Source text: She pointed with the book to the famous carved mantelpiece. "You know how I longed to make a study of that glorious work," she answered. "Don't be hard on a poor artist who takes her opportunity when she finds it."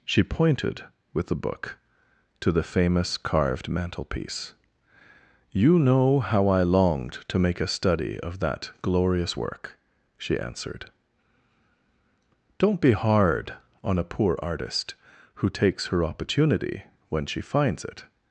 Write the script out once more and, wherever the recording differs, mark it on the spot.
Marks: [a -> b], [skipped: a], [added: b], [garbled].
She pointed with the book to the famous carved mantelpiece. "You know how I longed to make a study of that glorious work," she answered. "Don't be hard on a poor artist who takes her opportunity when she finds it."